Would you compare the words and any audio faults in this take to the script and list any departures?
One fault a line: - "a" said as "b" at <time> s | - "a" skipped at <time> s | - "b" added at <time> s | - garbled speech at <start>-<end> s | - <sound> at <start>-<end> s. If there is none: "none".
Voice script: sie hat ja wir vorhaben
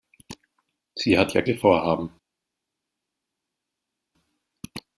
none